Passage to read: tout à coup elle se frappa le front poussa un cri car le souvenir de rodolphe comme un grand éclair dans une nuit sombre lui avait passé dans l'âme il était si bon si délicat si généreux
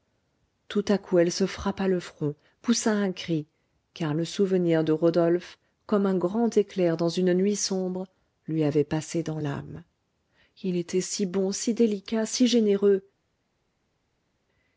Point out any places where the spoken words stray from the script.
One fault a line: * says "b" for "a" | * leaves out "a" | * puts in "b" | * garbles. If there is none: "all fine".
all fine